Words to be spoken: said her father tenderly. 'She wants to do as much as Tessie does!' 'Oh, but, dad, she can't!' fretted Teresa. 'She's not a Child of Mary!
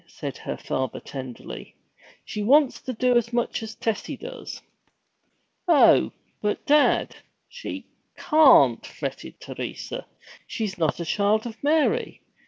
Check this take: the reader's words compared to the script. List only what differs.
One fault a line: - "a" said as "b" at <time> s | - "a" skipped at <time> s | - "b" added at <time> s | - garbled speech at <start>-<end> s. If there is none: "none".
none